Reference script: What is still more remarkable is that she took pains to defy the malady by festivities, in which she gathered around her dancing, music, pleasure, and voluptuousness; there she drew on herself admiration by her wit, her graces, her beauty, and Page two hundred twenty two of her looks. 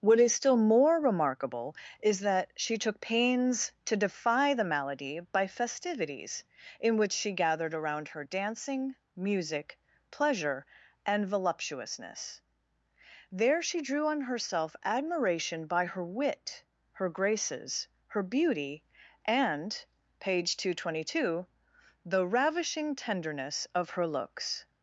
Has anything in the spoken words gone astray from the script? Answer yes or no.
yes